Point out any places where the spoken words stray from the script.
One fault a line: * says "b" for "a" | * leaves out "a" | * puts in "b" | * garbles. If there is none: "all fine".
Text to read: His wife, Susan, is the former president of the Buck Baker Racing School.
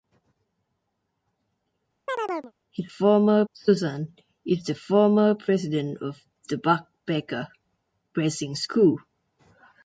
* says "former" for "wife"